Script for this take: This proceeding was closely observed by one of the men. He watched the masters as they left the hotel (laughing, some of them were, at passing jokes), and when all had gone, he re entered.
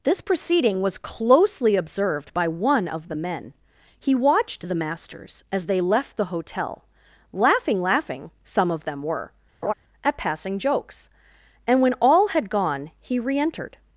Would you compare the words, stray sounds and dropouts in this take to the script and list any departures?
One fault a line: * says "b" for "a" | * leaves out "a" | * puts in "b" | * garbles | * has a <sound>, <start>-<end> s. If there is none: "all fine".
* puts in "laughing"
* has a laugh, 9.6-9.7 s